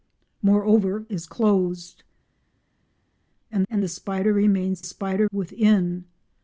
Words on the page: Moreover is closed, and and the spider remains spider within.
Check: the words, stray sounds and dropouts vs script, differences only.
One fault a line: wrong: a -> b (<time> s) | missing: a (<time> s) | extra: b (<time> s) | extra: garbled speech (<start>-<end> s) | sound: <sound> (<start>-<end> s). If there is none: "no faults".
no faults